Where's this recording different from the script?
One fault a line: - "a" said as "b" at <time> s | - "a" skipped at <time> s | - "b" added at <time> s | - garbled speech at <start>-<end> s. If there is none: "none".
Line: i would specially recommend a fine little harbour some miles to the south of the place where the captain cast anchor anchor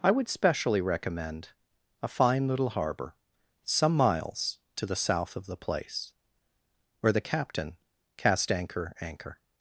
none